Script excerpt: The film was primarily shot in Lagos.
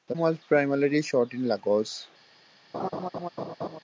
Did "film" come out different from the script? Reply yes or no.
yes